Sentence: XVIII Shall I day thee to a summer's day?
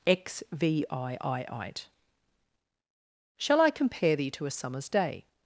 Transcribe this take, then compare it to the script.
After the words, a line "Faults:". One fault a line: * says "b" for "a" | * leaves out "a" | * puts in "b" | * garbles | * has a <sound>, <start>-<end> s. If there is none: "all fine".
XVIII Shall I compare thee to a summer's day?
Faults:
* says "compare" for "day"